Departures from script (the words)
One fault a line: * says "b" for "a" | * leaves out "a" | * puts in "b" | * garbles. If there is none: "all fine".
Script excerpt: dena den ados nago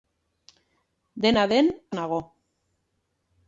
* leaves out "ados"